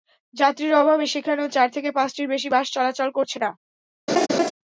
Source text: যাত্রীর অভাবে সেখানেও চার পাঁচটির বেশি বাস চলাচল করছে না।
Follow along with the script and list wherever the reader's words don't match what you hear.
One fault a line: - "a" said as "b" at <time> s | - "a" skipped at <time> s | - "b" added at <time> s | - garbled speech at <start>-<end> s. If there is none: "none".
- "থেকে" added at 1.7 s